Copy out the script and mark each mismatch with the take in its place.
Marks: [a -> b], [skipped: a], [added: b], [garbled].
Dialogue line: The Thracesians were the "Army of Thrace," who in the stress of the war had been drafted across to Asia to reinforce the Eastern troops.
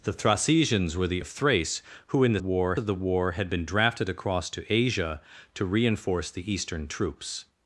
The Thracesians were the [skipped: "Army] of Thrace," who in the [stress -> war] of the war had been drafted across to Asia to reinforce the Eastern troops.